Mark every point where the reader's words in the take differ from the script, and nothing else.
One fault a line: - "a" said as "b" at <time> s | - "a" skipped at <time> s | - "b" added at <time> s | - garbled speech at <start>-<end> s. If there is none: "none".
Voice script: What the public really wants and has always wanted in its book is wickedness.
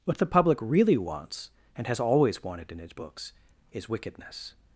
- "book" said as "books" at 2.9 s